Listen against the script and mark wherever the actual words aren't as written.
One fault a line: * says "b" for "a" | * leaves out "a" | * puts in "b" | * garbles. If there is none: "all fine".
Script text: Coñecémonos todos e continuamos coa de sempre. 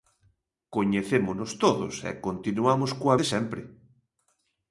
all fine